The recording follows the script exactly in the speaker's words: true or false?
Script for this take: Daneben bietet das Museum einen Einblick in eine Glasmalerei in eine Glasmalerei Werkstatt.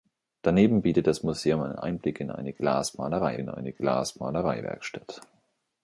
true